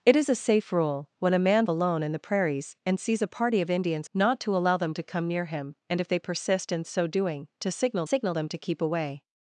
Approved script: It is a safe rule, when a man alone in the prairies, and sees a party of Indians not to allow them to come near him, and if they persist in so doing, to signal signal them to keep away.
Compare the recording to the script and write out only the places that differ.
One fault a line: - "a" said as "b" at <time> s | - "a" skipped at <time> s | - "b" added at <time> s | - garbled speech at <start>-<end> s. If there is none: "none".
none